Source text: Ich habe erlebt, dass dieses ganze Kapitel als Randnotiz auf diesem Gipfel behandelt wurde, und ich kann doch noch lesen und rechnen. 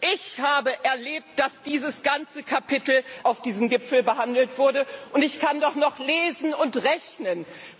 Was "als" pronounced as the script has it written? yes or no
no